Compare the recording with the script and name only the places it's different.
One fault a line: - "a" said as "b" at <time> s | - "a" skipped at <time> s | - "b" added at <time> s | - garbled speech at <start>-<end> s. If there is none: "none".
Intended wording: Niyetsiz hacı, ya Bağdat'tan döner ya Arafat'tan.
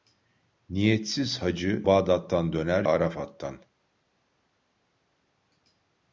- "ya" skipped at 1.8 s
- "ya" skipped at 2.8 s